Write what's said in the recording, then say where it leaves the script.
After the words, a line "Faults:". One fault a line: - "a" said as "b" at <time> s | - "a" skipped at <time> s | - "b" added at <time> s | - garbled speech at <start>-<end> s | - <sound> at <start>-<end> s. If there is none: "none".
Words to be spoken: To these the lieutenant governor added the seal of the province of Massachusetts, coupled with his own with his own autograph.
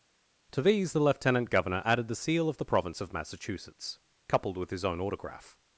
To these the lieutenant governor added the seal of the province of Massachusetts, coupled with his own autograph.
Faults:
- "with his own" skipped at 5.0 s